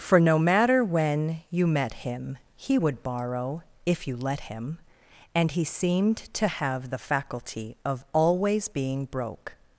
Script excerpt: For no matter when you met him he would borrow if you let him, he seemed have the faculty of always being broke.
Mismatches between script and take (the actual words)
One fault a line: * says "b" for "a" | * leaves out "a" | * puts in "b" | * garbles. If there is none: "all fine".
* puts in "and"
* puts in "to"